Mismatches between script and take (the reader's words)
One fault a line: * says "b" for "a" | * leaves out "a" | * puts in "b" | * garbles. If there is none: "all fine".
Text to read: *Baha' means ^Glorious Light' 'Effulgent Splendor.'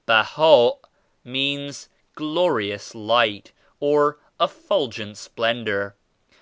* puts in "or"